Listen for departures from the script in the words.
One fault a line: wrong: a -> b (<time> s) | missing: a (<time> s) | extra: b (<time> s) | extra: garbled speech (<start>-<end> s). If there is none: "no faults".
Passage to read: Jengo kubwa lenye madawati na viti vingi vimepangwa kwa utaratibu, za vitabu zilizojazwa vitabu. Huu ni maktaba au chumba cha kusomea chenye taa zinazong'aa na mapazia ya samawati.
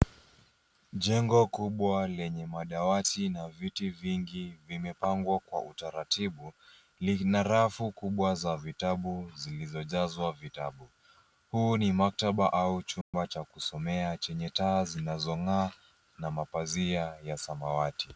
extra: lina rafu kubwa (7.0 s)